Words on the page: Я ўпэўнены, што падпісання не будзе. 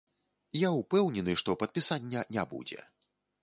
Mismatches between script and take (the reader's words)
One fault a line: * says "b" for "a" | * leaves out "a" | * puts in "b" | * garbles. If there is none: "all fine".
all fine